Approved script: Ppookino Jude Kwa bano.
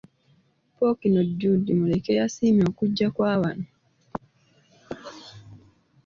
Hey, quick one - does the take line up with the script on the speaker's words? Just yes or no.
no